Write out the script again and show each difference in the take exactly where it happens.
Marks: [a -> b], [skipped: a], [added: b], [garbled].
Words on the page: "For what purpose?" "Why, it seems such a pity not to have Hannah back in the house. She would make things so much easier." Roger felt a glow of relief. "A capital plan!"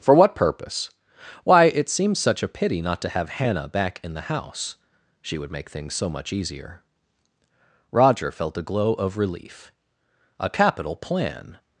"For what purpose?" "Why, it seems such a pity not to have Hannah back in the house. She would make things so much easier." Roger felt a glow of relief. "A capital plan!"